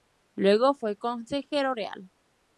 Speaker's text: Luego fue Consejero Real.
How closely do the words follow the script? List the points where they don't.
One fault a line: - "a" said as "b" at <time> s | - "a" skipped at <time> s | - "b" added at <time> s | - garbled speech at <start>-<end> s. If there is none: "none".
none